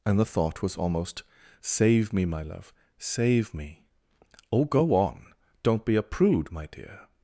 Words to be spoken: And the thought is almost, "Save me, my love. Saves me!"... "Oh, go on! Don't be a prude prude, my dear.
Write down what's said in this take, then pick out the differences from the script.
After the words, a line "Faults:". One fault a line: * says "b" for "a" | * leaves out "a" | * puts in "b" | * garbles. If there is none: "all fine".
And the thought was almost, "Save me, my love. Save me!"... "Oh, go on! Don't be a prude, my dear.
Faults:
* says "was" for "is"
* says "Save" for "Saves"
* leaves out "prude"